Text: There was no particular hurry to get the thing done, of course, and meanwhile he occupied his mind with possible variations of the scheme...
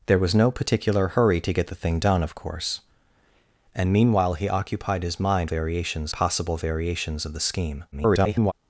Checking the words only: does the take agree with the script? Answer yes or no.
no